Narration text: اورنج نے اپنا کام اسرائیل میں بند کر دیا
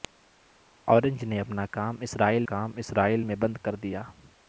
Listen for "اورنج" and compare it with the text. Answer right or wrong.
right